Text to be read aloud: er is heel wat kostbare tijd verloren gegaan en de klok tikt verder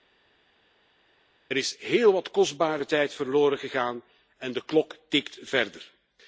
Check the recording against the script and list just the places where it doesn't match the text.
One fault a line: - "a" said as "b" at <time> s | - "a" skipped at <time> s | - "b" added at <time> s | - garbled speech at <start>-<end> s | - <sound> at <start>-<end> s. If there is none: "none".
none